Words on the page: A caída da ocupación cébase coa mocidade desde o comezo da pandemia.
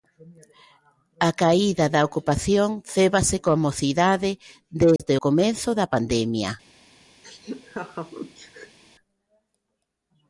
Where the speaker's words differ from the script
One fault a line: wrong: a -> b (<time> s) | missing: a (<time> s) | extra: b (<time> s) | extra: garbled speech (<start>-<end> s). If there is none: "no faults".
no faults